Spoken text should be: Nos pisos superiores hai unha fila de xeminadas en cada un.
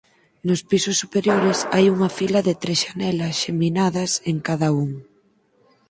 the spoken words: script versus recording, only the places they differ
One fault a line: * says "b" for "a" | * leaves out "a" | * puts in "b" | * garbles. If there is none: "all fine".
* puts in "tres xanelas"